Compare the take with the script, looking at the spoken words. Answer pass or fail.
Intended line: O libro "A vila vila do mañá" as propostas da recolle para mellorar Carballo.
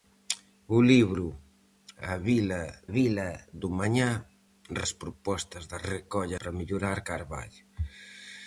pass